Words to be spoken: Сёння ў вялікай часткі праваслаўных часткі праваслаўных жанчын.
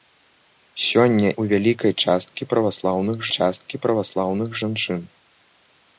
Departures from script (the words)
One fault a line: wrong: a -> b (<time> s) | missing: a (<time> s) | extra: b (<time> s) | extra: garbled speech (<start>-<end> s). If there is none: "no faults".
no faults